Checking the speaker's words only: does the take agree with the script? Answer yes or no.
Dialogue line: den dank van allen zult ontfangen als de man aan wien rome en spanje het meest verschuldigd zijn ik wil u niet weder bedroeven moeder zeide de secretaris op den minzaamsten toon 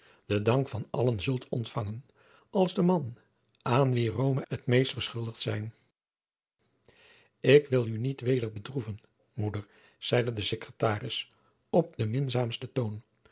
no